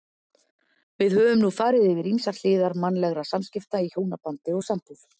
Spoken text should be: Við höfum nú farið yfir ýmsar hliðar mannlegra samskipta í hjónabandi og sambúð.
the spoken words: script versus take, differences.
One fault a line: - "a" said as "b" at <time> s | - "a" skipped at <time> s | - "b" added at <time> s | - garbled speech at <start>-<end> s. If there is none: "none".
none